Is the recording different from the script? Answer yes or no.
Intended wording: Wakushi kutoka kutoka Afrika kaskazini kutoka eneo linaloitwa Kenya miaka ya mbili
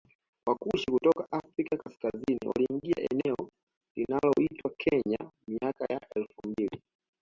yes